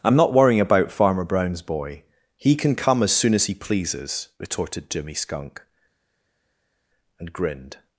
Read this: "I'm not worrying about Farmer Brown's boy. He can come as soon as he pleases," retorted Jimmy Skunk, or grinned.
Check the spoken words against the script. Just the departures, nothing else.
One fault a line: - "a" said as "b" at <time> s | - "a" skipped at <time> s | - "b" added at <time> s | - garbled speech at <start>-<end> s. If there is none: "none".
- "or" said as "and" at 7.2 s